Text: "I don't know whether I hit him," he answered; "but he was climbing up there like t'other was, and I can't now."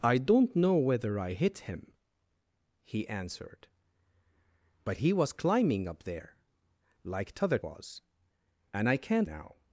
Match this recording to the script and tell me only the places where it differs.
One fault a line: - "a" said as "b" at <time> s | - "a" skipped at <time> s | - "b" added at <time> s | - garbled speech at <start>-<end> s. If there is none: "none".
none